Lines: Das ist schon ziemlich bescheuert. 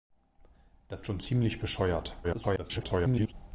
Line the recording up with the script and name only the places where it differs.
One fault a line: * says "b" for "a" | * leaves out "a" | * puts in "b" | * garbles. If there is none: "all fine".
* leaves out "ist"
* garbles